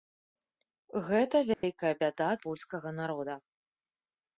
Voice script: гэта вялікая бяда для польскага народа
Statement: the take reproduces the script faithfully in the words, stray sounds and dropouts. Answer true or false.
false